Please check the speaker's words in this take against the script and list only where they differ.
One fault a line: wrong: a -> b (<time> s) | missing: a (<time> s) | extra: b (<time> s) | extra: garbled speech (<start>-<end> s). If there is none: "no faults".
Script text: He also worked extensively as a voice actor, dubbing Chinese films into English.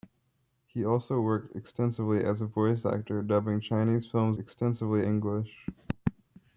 wrong: into -> extensively (4.4 s)